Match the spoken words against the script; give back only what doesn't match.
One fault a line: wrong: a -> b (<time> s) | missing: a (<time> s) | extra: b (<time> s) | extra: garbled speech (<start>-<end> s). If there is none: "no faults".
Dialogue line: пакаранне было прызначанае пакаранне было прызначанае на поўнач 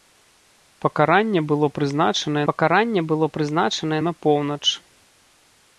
no faults